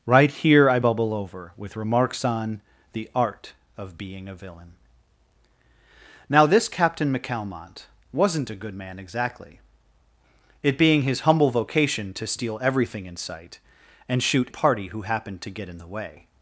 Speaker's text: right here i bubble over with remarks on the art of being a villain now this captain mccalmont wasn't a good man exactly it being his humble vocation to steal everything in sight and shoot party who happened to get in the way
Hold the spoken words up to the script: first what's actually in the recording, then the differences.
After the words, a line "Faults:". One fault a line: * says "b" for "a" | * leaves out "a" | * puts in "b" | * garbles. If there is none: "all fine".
right here i bubble over with remarks on the art of being a villain now this captain mccalmont wasn't a good man exactly it being his humble vocation to steal everything in sight and shoot party who happened to get in the way
Faults:
all fine